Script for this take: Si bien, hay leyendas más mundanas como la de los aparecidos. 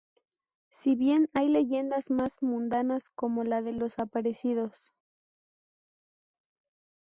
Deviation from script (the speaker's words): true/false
false